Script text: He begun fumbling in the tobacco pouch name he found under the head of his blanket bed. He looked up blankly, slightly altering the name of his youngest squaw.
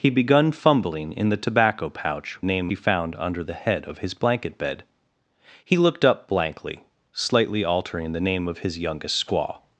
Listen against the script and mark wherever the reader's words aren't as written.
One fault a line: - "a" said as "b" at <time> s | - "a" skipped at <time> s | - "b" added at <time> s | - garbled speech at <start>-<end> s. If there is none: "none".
none